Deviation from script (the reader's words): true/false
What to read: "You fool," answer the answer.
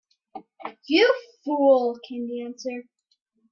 true